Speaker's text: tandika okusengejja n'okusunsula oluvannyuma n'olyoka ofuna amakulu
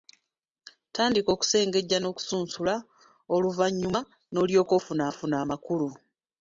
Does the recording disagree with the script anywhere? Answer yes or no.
yes